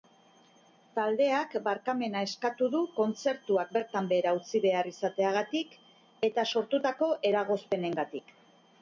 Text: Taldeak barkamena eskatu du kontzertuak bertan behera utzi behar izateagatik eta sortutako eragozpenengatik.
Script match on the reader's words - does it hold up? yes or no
yes